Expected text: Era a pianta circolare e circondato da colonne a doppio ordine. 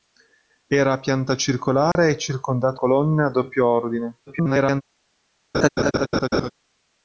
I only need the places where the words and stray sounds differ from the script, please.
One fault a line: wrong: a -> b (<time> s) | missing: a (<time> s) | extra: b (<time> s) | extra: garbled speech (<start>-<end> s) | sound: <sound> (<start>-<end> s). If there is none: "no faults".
sound: dropout (1.9-2.0 s)
missing: da (2.8 s)
extra: garbled speech (4.3-4.8 s)
sound: laugh (5.5-6.5 s)